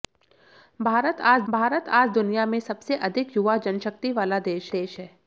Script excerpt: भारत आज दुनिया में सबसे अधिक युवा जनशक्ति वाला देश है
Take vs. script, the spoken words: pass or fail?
fail